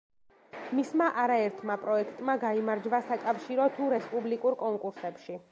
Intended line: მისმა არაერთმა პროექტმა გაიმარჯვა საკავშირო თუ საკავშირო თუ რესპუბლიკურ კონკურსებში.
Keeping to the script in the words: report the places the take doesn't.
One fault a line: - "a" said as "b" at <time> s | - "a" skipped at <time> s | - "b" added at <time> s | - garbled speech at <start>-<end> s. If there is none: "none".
- "საკავშირო თუ" skipped at 3.9 s